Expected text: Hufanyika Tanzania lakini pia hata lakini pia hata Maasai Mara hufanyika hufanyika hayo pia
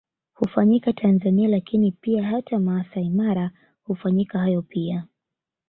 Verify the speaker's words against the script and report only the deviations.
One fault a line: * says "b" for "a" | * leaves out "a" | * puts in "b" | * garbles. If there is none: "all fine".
* leaves out "lakini pia hata"
* leaves out "hufanyika"